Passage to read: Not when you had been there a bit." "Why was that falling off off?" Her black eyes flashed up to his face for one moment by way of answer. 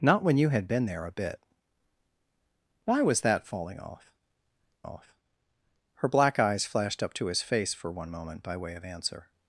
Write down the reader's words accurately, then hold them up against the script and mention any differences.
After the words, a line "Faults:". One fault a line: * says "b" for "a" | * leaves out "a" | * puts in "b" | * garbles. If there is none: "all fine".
Not when you had been there a bit." "Why was that falling off off?" Her black eyes flashed up to his face for one moment by way of answer.
Faults:
all fine